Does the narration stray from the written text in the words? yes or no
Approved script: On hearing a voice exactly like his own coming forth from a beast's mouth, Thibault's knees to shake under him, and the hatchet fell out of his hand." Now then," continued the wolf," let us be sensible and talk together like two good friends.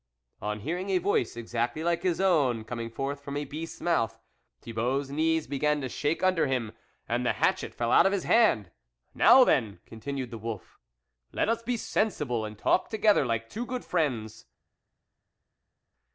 yes